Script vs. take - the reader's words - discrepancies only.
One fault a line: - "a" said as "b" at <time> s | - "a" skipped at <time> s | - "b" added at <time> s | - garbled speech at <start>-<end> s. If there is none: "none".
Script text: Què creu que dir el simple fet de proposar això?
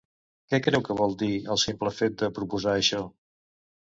- "vol" added at 1.0 s